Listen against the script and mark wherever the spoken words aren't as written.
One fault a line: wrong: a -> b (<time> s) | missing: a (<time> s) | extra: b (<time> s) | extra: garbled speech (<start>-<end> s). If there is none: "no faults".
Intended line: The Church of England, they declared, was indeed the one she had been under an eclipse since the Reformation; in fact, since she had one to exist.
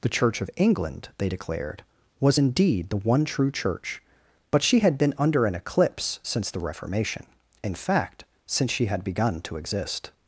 extra: true Church but (3.2 s)
wrong: one -> begun (9.0 s)